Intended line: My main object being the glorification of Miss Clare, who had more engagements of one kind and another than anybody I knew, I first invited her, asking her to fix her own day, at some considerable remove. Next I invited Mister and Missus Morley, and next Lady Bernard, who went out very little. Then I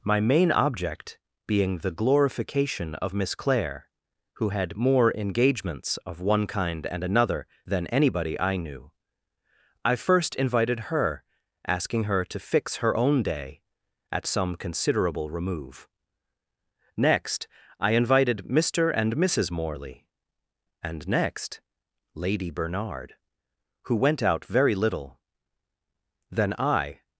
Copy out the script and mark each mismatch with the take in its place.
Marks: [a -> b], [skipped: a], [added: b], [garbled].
My main object being the glorification of Miss Clare, who had more engagements of one kind and another than anybody I knew, I first invited her, asking her to fix her own day, at some considerable remove. Next I invited Mister and Missus Morley, and next Lady Bernard, who went out very little. Then I